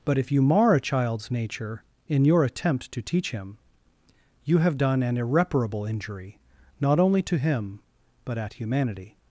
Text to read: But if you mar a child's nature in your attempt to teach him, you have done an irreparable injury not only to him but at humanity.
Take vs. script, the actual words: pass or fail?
pass